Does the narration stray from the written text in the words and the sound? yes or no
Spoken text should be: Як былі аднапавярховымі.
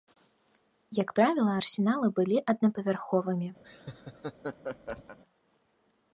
yes